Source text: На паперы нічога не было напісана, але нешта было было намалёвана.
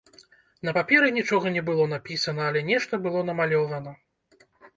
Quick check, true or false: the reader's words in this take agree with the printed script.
false